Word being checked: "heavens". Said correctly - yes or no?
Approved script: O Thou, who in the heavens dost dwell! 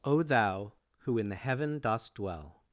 no